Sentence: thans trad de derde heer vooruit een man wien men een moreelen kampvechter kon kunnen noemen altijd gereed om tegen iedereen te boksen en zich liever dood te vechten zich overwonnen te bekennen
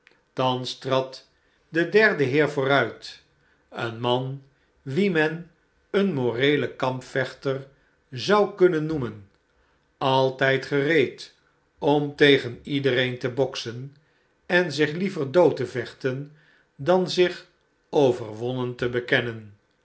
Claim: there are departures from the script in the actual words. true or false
true